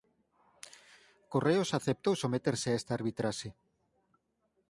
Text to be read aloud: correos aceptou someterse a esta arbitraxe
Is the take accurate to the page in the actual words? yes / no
yes